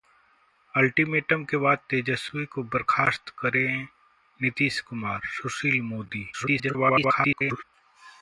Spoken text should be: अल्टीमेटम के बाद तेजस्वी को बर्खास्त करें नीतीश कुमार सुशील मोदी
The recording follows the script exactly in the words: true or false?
false